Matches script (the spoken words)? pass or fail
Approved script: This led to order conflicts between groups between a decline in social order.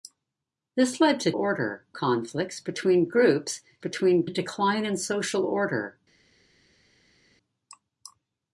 pass